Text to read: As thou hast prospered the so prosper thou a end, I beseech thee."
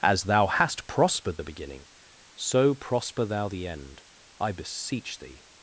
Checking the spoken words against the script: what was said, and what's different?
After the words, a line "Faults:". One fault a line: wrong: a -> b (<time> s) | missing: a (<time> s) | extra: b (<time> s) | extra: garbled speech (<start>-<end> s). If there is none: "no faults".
As thou hast prospered the beginning, so prosper thou the end, I beseech thee."
Faults:
extra: beginning (1.4 s)
wrong: a -> the (3.5 s)